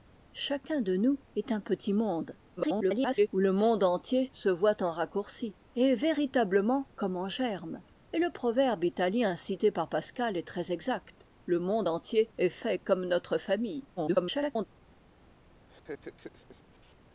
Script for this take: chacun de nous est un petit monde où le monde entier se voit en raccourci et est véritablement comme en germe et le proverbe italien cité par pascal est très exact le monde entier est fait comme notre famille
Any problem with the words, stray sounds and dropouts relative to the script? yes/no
yes